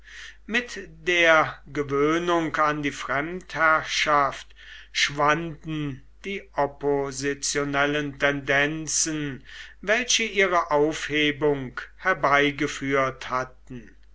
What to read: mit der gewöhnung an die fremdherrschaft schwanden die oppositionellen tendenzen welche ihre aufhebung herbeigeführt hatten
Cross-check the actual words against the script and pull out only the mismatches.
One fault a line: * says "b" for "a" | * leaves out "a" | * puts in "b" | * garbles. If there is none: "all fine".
all fine